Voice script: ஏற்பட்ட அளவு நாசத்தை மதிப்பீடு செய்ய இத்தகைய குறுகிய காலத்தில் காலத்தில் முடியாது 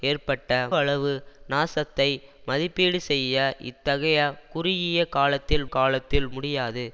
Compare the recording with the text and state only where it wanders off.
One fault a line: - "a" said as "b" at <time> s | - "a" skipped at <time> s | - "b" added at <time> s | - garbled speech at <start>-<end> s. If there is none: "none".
none